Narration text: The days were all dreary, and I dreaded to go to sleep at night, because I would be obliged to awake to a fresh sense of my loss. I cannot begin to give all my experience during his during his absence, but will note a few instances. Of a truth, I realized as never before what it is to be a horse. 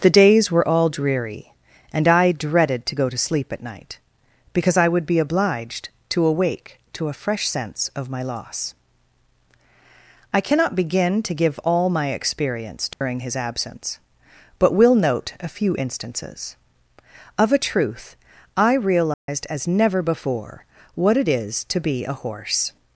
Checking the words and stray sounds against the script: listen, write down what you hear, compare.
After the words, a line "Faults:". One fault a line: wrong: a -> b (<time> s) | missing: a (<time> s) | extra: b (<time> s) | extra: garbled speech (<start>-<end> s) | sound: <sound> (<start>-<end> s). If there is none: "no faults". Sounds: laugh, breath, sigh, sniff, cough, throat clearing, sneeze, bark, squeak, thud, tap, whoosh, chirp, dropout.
The days were all dreary, and I dreaded to go to sleep at night, because I would be obliged to awake to a fresh sense of my loss. I cannot begin to give all my experience during his absence, but will note a few instances. Of a truth, I realized as never before what it is to be a horse.
Faults:
sound: dropout (12.9-13.0 s)
missing: during his (13.3 s)
sound: dropout (19.1-19.3 s)